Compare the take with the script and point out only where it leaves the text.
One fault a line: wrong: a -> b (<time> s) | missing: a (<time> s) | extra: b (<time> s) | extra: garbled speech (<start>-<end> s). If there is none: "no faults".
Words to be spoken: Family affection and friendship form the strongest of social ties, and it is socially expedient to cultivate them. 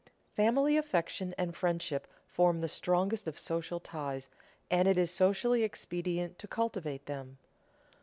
no faults